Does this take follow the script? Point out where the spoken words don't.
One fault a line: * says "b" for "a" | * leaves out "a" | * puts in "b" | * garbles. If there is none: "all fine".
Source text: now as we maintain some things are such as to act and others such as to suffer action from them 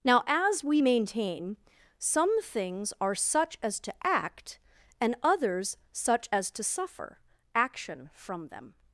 all fine